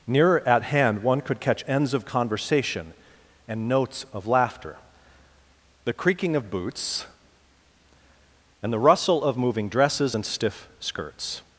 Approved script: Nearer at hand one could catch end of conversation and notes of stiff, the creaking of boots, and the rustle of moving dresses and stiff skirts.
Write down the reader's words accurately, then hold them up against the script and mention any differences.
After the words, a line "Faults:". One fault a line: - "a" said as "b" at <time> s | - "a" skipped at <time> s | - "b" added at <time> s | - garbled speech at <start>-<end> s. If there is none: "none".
Nearer at hand one could catch ends of conversation and notes of laughter, the creaking of boots, and the rustle of moving dresses and stiff skirts.
Faults:
- "end" said as "ends" at 1.7 s
- "stiff" said as "laughter" at 4.3 s